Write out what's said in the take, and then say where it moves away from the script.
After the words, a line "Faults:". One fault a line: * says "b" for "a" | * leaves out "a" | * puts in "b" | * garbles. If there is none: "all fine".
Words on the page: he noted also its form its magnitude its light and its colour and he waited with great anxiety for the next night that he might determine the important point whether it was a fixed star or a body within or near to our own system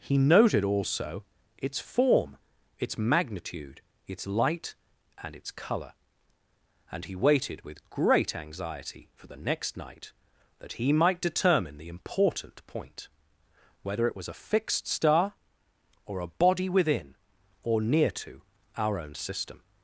he noted also its form its magnitude its light and its colour and he waited with great anxiety for the next night that he might determine the important point whether it was a fixed star or a body within or near to our own system
Faults:
all fine